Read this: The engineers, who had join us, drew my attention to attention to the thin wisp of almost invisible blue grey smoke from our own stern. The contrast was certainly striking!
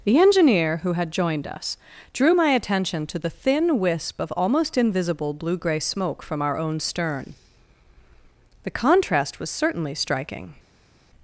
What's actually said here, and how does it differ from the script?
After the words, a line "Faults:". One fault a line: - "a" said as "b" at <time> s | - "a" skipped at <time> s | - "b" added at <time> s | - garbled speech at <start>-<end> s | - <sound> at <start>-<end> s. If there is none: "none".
The engineer, who had joined us, drew my attention to the thin wisp of almost invisible blue grey smoke from our own stern. The contrast was certainly striking!
Faults:
- "engineers" said as "engineer" at 0.2 s
- "join" said as "joined" at 1.1 s
- "attention to" skipped at 3.2 s